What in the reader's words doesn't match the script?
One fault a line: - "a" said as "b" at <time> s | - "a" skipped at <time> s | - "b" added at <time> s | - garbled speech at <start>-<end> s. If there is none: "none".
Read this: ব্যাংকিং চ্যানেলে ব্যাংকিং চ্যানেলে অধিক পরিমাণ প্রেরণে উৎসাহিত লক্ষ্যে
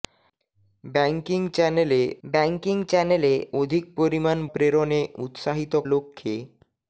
none